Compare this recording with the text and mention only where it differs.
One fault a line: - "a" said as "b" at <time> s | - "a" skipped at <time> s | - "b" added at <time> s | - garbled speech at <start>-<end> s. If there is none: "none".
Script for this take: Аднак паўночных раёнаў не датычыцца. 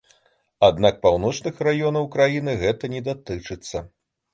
- "краіны гэта" added at 2.2 s